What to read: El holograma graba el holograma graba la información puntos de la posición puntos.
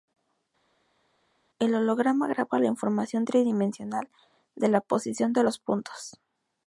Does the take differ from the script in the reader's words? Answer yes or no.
yes